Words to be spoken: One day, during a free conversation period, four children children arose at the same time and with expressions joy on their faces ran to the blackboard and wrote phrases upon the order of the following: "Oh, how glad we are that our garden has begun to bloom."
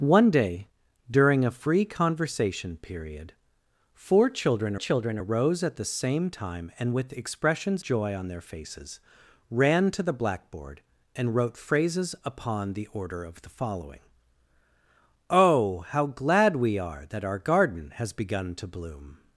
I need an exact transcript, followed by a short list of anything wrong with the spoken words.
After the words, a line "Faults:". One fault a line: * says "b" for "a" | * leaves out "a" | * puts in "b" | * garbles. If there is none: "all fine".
One day, during a free conversation period, four children children arose at the same time and with expressions joy on their faces ran to the blackboard and wrote phrases upon the order of the following: "Oh, how glad we are that our garden has begun to bloom."
Faults:
all fine